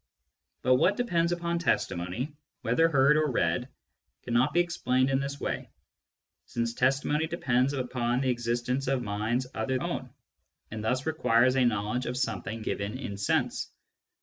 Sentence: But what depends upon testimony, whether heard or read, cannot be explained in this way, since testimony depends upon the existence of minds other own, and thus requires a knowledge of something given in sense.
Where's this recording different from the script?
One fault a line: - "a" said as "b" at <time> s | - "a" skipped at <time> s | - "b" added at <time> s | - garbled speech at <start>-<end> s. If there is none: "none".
none